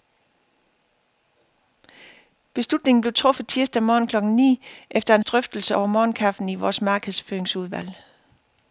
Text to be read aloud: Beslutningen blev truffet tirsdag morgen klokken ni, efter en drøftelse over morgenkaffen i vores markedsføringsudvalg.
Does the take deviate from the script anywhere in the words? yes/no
no